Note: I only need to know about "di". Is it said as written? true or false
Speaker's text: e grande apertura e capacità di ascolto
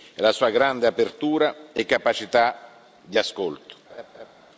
true